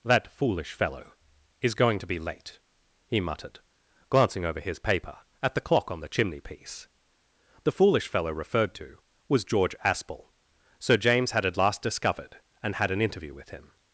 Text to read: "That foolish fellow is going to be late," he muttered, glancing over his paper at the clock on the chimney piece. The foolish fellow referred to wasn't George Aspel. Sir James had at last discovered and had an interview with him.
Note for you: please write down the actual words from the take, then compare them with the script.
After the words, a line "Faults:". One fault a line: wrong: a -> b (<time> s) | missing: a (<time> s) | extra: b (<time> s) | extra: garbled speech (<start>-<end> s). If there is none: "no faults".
"That foolish fellow is going to be late," he muttered, glancing over his paper at the clock on the chimney piece. The foolish fellow referred to was George Aspel. Sir James had at last discovered and had an interview with him.
Faults:
wrong: wasn't -> was (9.3 s)